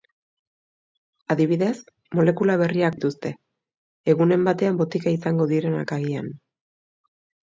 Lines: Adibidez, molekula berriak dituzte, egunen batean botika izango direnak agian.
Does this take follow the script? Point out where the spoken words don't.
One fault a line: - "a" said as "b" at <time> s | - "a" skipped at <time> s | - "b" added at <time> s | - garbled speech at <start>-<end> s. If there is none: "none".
none